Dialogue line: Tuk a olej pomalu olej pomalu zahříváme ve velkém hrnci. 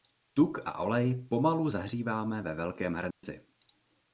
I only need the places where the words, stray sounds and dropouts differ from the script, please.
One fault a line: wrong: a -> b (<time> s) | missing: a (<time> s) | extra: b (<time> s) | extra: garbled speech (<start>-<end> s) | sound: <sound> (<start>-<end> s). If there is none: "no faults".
missing: olej pomalu (1.7 s)
sound: dropout (3.1-3.2 s)